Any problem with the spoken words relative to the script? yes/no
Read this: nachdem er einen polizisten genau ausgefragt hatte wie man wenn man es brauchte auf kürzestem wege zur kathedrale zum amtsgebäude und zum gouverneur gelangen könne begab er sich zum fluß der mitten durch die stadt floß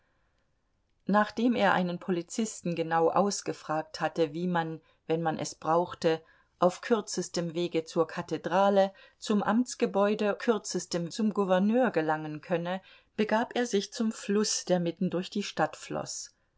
yes